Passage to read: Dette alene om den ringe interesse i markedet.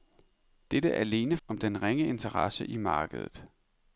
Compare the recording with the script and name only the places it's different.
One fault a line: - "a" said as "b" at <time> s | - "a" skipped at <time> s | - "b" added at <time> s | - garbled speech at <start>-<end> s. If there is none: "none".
none